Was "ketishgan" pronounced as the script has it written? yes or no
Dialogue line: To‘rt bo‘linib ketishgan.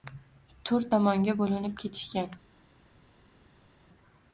yes